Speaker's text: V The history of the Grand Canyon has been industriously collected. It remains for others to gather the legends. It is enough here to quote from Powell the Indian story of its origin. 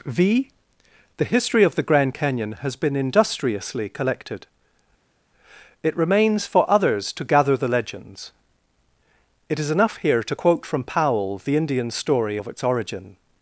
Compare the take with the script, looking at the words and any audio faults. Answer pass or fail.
pass